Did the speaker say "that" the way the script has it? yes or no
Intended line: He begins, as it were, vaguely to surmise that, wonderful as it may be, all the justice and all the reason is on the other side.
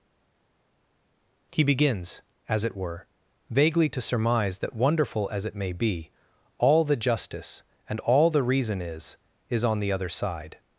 yes